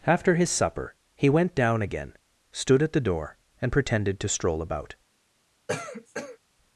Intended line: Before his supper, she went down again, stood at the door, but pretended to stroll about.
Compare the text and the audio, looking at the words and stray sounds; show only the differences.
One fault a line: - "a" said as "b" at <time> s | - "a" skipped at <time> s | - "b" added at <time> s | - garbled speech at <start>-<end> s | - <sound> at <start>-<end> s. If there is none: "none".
- "Before" said as "After" at 0.1 s
- "she" said as "he" at 1.1 s
- "but" said as "and" at 3.6 s
- cough at 5.7-6.4 s